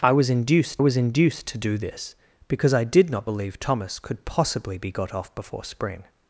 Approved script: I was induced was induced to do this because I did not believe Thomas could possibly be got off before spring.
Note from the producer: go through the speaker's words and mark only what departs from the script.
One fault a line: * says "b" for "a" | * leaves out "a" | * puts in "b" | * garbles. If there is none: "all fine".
all fine